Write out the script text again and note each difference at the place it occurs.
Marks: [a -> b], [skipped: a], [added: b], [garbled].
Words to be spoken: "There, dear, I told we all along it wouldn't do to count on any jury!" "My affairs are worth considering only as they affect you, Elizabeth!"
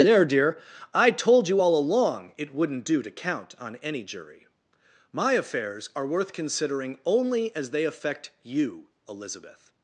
"There, dear, I told [we -> you] all along it wouldn't do to count on any jury!" "My affairs are worth considering only as they affect you, Elizabeth!"